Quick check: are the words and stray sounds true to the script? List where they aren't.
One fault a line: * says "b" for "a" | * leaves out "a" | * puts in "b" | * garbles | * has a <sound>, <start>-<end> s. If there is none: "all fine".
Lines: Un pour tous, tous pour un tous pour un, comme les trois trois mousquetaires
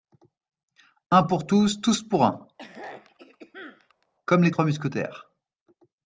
* leaves out "tous pour un"
* has a throat clearing, 2.6-4.1 s
* leaves out "trois"